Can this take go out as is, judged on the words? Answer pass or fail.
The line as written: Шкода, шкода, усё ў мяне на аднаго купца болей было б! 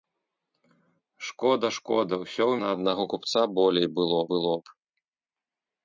fail